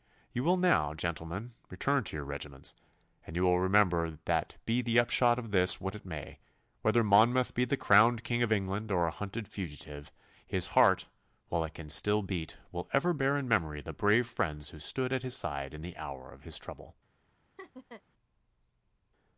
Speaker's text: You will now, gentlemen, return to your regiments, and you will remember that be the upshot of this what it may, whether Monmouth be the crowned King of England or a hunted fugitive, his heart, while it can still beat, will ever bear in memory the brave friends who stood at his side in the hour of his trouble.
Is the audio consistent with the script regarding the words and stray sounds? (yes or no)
no